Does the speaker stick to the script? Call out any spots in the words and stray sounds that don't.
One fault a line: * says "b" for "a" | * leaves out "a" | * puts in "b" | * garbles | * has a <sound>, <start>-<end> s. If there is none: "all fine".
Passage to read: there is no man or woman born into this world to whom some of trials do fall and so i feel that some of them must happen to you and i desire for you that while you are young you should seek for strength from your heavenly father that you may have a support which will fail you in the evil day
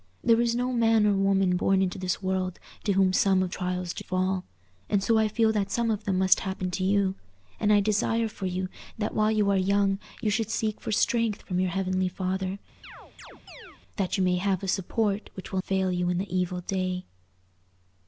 * has a chirp, 12.8-13.8 s